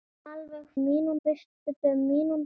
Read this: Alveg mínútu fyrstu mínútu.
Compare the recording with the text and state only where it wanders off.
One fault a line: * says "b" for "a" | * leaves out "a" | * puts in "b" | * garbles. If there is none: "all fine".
all fine